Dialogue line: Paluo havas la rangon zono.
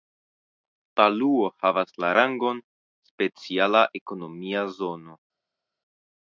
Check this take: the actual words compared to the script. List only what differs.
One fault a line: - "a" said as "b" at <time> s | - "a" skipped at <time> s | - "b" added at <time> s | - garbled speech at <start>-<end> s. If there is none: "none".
- "speciala ekonomia" added at 3.1 s